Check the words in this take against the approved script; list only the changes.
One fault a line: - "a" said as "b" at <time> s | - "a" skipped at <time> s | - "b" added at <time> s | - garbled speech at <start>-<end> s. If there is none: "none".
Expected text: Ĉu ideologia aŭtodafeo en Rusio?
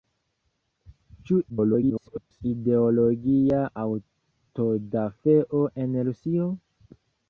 - garbled speech at 1.5-2.4 s